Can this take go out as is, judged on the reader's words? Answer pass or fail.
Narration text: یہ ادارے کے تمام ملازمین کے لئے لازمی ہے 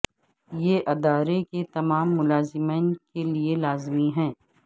pass